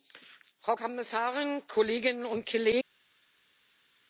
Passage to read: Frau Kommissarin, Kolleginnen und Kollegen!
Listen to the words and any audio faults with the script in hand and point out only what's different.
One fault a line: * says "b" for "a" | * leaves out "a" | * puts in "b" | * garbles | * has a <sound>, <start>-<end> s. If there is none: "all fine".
all fine